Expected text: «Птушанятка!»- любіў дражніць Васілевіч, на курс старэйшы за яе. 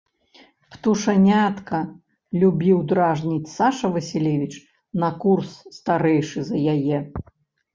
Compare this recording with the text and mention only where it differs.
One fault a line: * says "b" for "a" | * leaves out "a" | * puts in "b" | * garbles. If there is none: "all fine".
* puts in "Саша"